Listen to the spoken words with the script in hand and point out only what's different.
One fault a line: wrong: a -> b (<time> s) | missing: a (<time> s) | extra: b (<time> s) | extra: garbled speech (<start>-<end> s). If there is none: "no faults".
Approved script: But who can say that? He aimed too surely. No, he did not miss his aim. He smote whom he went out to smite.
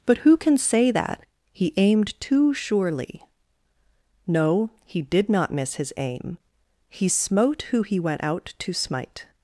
wrong: whom -> who (7.7 s)